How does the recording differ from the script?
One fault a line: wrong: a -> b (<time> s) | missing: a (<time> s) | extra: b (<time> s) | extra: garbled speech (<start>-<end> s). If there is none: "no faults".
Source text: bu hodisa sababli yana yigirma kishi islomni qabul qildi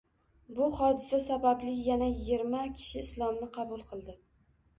no faults